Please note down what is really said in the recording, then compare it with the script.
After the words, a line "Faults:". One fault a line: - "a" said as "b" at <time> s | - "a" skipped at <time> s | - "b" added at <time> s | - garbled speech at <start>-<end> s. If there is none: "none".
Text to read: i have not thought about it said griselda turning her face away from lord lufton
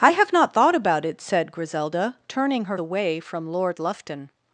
i have not thought about it said griselda turning her away from lord lufton
Faults:
- "face" skipped at 2.8 s